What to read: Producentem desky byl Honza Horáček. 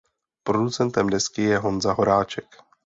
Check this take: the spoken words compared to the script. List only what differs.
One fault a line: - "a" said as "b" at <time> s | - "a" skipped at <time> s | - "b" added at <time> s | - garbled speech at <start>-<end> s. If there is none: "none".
- "byl" said as "je" at 1.4 s